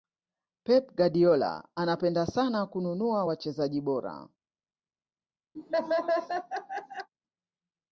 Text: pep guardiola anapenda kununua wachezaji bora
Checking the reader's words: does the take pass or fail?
fail